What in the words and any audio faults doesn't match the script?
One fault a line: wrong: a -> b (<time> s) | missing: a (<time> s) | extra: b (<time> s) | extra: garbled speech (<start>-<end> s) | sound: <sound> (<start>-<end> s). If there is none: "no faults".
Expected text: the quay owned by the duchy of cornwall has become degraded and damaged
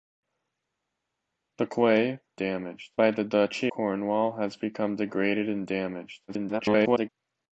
wrong: owned -> damaged (2.4 s)
missing: of (3.7 s)
extra: garbled speech (6.3-7.1 s)